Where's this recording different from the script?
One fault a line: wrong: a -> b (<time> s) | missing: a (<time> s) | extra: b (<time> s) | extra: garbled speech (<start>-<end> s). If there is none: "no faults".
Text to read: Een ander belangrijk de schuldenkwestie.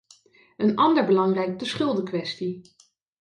no faults